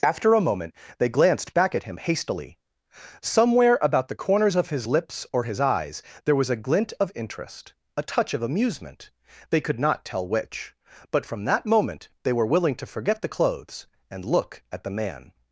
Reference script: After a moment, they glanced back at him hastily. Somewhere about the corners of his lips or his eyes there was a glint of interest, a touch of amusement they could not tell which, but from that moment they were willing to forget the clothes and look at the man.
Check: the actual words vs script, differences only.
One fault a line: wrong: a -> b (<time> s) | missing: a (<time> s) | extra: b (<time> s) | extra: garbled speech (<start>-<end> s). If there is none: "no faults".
no faults